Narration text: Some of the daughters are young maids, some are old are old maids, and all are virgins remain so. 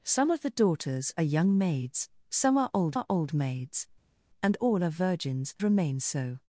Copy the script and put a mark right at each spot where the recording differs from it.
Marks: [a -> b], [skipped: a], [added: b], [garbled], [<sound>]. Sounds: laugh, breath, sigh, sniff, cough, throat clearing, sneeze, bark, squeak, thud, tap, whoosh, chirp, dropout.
Some of the daughters are young maids, some are old are old maids, and all are virgins remain so.